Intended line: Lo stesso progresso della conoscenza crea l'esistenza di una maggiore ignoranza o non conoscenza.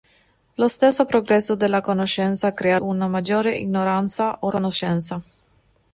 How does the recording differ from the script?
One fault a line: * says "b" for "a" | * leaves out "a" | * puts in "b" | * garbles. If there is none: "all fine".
* leaves out "l'esistenza di"
* leaves out "non"